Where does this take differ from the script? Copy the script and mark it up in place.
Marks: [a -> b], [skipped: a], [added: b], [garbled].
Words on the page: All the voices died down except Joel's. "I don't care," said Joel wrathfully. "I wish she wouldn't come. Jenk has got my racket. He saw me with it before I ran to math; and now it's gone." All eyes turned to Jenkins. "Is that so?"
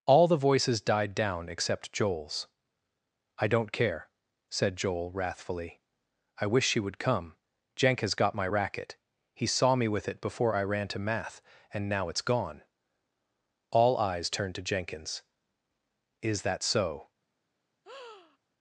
All the voices died down except Joel's. "I don't care," said Joel wrathfully. "I wish she [wouldn't -> would] come. Jenk has got my racket. He saw me with it before I ran to math; and now it's gone." All eyes turned to Jenkins. "Is that so?"